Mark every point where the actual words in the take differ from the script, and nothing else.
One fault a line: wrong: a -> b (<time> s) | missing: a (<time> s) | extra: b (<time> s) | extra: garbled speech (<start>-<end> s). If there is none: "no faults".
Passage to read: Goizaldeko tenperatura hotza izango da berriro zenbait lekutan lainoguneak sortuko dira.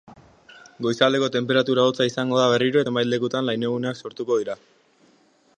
no faults